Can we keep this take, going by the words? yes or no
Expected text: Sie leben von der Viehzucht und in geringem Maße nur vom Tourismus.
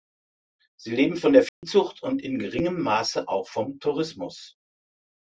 no